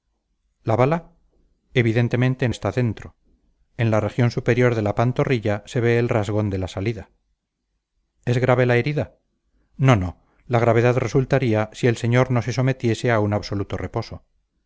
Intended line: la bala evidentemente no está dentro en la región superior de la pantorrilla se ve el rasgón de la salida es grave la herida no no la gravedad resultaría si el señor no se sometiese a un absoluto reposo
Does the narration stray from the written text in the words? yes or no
yes